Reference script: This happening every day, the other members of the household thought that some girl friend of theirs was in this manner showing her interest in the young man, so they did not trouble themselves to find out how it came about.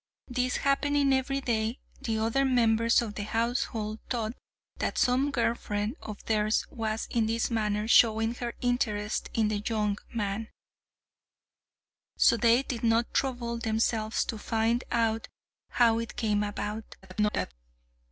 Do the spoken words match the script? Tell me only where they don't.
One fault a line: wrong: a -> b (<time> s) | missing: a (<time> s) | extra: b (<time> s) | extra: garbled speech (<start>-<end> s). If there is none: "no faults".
extra: garbled speech (17.0-17.5 s)